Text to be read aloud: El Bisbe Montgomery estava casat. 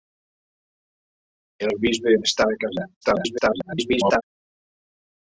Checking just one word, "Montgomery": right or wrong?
wrong